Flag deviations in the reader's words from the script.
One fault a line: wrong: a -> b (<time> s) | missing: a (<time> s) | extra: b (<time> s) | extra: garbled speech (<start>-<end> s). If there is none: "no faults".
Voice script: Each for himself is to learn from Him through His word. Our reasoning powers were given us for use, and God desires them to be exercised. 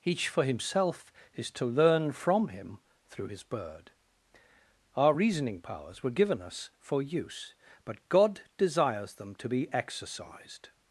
wrong: word -> bird (3.4 s)
wrong: and -> but (7.8 s)